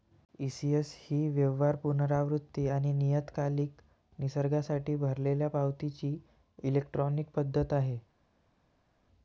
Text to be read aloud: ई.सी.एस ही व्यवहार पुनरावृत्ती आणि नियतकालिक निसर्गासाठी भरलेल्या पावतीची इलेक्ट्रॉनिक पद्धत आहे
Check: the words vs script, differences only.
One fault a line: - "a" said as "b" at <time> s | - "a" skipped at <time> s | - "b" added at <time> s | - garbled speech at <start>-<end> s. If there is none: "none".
none